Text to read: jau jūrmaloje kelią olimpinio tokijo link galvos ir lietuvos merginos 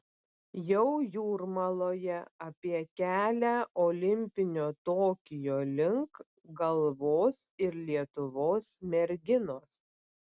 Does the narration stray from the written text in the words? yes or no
yes